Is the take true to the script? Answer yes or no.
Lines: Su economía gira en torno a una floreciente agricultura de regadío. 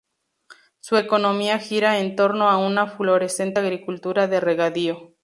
yes